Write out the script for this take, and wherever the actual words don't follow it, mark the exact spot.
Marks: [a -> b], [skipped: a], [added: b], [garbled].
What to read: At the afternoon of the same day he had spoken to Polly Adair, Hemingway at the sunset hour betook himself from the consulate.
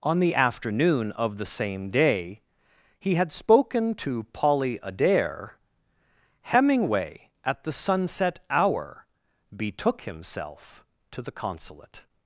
[At -> On] the afternoon of the same day he had spoken to Polly Adair, Hemingway at the sunset hour betook himself [from -> to] the consulate.